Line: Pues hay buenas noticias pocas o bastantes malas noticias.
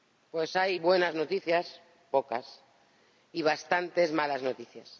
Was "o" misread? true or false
true